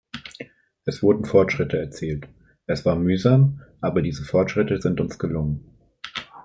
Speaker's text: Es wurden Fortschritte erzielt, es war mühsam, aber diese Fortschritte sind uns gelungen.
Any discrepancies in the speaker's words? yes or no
no